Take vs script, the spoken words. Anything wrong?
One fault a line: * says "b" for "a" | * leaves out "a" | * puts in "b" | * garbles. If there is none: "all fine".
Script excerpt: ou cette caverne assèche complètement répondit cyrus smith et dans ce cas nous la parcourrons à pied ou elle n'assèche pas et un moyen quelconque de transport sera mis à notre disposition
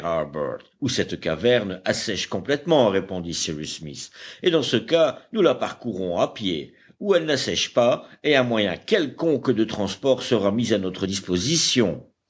all fine